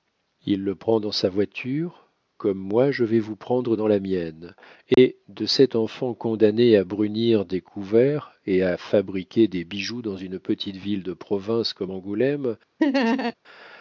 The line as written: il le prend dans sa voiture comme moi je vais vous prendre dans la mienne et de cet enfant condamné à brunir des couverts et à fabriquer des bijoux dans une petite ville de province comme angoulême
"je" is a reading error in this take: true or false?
false